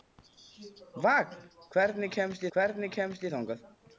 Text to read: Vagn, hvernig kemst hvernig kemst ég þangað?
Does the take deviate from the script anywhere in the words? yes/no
no